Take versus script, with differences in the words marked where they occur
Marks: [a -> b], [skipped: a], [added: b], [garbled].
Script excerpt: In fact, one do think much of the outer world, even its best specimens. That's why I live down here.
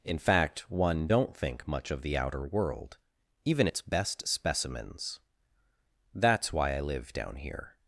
In fact, one [do -> don't] think much of the outer world, even its best specimens. That's why I live down here.